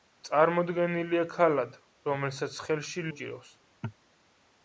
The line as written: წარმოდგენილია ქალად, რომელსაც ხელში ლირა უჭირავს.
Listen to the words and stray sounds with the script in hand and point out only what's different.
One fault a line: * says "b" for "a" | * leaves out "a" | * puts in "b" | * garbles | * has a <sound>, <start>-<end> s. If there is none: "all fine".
* leaves out "ლირა"